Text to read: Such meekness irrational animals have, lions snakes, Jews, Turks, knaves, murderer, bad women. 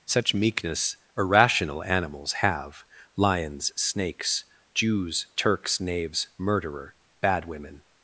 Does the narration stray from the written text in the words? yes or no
no